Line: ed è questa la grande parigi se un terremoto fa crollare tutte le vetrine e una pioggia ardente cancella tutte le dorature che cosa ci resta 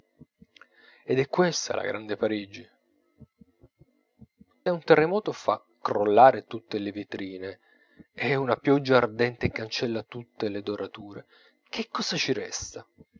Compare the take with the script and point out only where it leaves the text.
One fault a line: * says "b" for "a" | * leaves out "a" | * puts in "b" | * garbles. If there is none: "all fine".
* leaves out "se"